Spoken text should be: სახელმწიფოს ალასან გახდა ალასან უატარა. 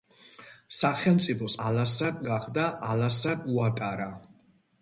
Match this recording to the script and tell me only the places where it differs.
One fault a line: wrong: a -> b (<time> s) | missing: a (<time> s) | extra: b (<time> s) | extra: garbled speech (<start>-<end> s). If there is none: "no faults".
no faults